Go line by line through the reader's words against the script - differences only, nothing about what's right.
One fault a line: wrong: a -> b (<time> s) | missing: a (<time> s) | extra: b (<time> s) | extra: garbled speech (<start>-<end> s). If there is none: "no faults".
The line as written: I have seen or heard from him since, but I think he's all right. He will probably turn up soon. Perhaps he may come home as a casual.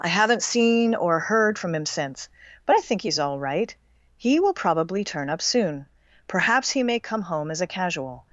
wrong: have -> haven't (0.1 s)